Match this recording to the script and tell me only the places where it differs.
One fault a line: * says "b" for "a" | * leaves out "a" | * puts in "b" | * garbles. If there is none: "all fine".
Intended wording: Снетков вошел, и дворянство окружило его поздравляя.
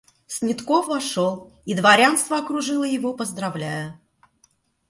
all fine